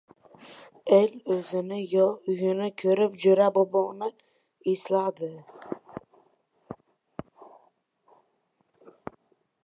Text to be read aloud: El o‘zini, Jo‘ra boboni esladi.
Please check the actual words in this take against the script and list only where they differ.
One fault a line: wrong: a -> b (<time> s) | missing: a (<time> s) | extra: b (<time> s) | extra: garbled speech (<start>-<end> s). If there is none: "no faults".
extra: yo uyini ko‘rib (1.9 s)